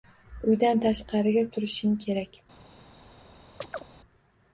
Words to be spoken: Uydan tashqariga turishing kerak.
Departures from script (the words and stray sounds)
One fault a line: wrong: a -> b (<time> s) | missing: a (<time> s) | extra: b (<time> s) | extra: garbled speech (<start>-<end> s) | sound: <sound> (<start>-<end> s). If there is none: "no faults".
sound: chirp (3.6-3.8 s)